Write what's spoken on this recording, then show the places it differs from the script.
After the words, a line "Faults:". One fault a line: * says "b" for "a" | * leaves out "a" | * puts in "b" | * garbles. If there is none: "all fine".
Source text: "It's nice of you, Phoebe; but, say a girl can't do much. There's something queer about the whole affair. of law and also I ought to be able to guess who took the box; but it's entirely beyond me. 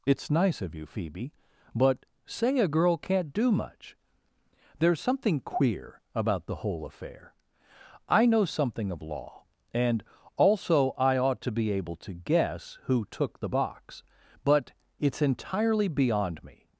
"It's nice of you, Phoebe; but, say a girl can't do much. There's something queer about the whole affair. I know something of law and also I ought to be able to guess who took the box; but it's entirely beyond me.
Faults:
* puts in "I know something"